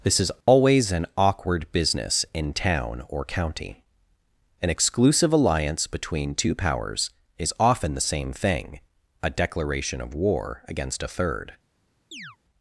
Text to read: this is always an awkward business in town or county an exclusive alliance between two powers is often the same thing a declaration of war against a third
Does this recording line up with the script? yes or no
yes